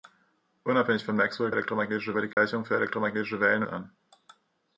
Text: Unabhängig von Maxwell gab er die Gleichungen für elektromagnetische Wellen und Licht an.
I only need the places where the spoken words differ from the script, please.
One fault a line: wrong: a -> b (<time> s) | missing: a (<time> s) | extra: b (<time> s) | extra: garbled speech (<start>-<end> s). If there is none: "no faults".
wrong: gab -> elektromagnetische (1.5 s)
missing: und Licht (3.6 s)